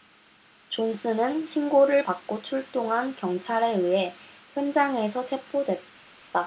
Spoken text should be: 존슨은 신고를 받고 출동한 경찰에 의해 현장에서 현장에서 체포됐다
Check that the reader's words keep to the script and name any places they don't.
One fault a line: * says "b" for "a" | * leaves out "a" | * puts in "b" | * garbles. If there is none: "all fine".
* leaves out "현장에서"